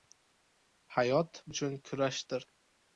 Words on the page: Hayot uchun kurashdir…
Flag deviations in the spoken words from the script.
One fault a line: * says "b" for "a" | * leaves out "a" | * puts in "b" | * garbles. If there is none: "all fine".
all fine